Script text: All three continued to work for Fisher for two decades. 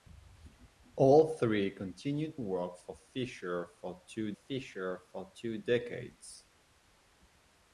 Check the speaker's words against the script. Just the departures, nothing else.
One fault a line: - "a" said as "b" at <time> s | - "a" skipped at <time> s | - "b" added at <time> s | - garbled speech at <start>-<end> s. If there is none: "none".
- "to" skipped at 2.4 s
- "Fisher for two" added at 4.3 s